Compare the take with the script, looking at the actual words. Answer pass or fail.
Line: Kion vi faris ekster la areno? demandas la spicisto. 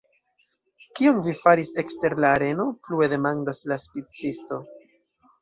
fail